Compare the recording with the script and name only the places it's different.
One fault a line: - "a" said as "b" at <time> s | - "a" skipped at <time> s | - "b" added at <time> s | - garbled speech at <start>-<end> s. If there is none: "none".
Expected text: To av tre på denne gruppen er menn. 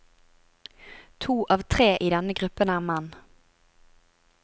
- "på" said as "i" at 2.0 s